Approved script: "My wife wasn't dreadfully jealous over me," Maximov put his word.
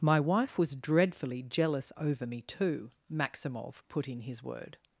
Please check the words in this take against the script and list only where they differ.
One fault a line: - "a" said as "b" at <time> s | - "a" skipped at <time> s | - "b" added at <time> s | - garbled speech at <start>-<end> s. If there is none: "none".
- "wasn't" said as "was" at 0.6 s
- "too" added at 2.4 s
- "in" added at 4.1 s